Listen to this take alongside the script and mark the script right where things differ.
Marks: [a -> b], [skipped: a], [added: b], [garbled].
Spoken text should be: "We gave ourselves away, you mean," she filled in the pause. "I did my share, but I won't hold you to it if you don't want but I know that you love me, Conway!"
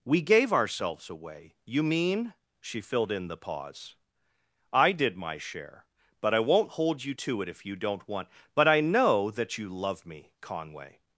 "We gave ourselves away, you mean," she filled in the pause. "I did my share, but I won't hold you to it if you don't want but I know that you love me, Conway!"